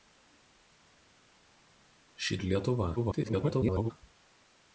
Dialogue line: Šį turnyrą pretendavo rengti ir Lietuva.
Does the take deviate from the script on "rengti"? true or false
true